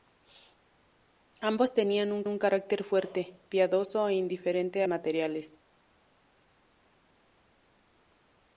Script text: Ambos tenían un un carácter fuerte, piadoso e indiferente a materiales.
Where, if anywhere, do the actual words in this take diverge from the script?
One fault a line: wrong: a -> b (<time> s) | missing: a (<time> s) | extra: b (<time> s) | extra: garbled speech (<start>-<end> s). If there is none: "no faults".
no faults